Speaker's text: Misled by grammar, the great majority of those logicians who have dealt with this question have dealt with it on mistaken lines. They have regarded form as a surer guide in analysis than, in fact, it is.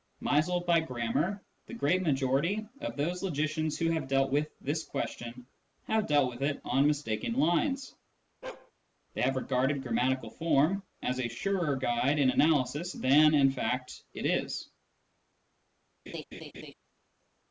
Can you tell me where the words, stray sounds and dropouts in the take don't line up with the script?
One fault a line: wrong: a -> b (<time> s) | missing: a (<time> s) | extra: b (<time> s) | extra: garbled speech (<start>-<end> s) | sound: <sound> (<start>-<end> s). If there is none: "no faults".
sound: bark (8.4-8.7 s)
extra: grammatical (9.8 s)
sound: laugh (16.1-16.7 s)